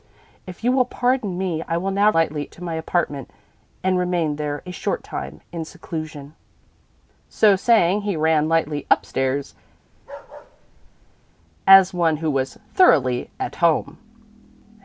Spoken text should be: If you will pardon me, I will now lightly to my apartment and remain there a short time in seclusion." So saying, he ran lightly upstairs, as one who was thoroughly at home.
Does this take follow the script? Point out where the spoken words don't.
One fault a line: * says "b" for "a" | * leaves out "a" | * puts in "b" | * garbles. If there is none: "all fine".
all fine